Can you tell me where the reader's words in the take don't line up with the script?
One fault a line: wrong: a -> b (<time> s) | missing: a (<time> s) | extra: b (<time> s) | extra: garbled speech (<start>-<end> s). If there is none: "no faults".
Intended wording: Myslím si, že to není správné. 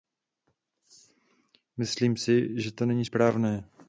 no faults